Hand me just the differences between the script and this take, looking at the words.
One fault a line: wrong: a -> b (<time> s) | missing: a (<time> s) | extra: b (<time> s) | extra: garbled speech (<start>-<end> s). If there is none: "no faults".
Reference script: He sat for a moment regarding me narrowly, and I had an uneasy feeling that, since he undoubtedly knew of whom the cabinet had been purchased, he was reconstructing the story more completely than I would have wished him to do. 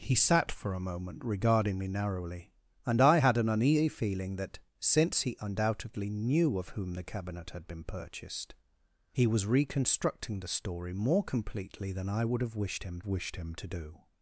extra: wished him (13.1 s)